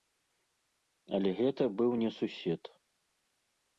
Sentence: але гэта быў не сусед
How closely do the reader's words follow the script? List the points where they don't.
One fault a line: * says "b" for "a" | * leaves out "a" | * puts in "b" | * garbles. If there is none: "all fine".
all fine